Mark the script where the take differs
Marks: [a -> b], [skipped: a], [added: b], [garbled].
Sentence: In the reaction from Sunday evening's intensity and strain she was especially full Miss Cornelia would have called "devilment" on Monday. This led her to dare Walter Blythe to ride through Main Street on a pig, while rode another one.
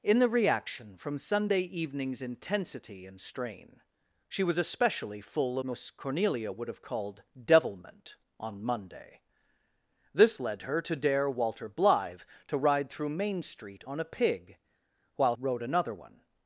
In the reaction from Sunday evening's intensity and strain she was especially full Miss Cornelia would have called "devilment" on Monday. This led her to dare Walter Blythe to ride through Main Street on a pig, while rode another one.